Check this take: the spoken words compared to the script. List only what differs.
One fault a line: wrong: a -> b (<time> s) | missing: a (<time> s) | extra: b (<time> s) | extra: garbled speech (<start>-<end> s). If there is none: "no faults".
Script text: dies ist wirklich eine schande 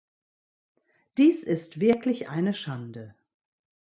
no faults